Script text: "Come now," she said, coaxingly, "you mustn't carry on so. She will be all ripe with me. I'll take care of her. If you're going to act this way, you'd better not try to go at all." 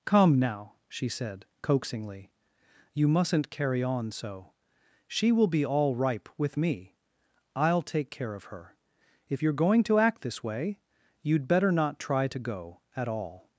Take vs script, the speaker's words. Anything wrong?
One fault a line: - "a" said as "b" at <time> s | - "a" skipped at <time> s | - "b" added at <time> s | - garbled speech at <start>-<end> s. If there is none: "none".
none